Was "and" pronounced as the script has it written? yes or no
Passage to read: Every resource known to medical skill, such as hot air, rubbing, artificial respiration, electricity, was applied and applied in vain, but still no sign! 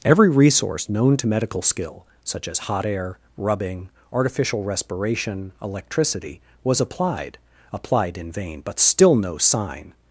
no